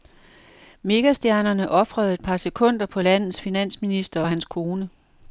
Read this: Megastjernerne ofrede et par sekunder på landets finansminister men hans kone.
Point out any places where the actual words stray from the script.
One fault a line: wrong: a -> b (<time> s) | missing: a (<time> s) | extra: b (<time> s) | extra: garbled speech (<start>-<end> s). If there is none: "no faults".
wrong: men -> og (4.2 s)